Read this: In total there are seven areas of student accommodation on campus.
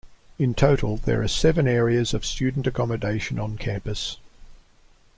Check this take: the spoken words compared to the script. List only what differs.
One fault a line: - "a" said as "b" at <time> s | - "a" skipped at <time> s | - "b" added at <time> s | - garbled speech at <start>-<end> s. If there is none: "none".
none